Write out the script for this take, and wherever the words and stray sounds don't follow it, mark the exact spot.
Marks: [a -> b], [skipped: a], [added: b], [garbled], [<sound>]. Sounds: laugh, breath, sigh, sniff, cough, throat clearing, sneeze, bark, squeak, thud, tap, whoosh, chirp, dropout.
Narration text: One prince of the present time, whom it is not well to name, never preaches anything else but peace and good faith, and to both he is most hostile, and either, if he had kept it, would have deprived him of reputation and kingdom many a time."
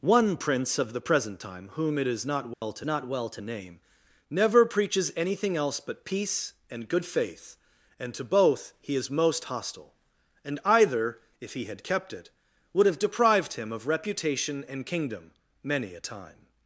One prince of the present time, whom it is not well [dropout] to [added: not well to] name, never preaches anything else but peace and good faith, and to both he is most hostile, and either, if he had kept it, would have deprived him of reputation and kingdom many a time."